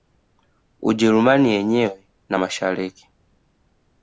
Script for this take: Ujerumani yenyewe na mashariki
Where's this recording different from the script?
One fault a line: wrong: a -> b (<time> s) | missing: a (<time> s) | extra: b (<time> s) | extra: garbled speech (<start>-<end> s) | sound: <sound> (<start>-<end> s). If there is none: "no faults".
no faults